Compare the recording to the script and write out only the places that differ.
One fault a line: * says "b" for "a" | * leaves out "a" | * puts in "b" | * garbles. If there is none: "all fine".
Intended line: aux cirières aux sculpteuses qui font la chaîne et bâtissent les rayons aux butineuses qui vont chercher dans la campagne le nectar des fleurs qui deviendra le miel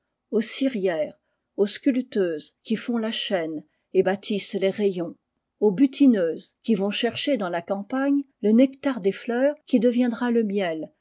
all fine